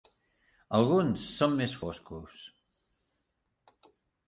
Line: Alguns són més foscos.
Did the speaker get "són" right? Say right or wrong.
right